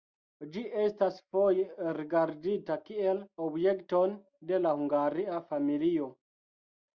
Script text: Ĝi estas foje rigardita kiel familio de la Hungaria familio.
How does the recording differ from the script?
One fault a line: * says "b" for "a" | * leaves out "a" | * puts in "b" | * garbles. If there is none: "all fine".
* says "objekton" for "familio"